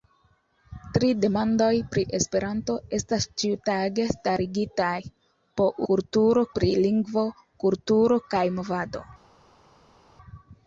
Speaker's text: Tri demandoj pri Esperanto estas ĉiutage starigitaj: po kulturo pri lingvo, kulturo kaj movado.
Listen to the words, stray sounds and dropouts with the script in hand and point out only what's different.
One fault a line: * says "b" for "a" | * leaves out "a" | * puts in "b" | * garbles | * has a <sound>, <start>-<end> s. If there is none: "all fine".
all fine